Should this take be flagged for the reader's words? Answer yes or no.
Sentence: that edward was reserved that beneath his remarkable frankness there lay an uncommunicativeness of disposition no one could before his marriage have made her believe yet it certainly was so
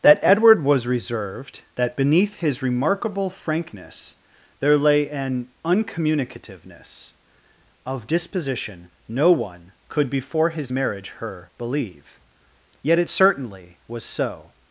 yes